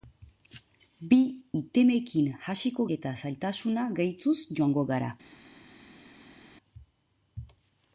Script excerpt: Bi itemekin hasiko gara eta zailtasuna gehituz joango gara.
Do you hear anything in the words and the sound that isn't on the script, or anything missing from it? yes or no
yes